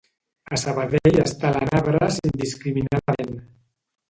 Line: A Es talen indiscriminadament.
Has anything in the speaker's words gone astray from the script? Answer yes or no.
yes